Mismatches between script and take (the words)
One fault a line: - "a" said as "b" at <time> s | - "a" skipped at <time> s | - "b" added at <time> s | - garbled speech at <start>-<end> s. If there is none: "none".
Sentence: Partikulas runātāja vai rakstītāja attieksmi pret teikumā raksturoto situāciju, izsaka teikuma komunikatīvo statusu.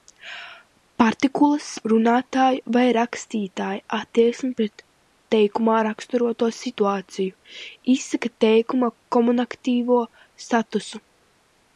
none